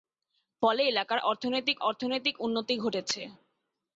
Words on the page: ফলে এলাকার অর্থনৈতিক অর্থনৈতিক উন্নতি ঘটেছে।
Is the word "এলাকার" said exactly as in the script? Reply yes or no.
yes